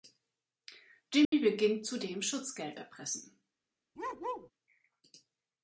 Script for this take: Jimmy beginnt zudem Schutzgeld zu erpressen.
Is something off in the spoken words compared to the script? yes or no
yes